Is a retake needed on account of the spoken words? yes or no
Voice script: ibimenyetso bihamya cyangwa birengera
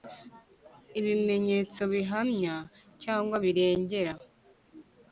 no